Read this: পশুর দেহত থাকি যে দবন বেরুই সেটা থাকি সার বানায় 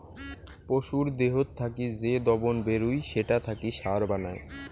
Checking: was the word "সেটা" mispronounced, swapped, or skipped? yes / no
no